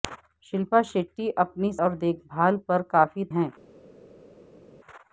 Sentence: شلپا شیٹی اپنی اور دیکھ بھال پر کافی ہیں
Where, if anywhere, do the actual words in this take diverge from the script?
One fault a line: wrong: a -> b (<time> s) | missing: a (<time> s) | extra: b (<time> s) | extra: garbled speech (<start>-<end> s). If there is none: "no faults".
no faults